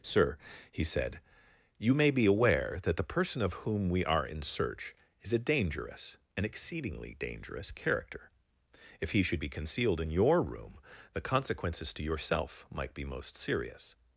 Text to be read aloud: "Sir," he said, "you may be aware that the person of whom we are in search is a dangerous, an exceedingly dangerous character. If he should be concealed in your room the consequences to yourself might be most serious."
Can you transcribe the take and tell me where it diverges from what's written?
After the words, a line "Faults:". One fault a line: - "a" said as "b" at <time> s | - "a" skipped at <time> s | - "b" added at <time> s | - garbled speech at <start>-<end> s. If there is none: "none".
"Sir," he said, "you may be aware that the person of whom we are in search is a dangerous, an exceedingly dangerous character. If he should be concealed in your room the consequences to yourself might be most serious."
Faults:
none